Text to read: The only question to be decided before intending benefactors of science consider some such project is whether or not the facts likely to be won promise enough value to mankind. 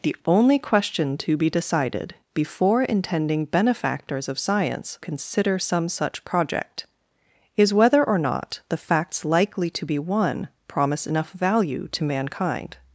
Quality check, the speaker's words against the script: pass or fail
pass